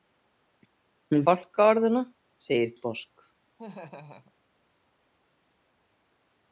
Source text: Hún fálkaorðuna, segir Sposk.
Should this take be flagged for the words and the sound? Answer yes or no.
yes